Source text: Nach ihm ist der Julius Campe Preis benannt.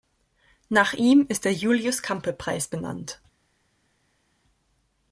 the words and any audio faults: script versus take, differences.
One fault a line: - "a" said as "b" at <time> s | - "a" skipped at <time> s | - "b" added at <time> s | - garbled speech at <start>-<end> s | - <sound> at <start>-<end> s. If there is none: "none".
none